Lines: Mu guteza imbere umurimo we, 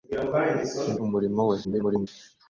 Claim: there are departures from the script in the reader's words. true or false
true